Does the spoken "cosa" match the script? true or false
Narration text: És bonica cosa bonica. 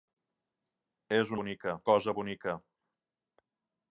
true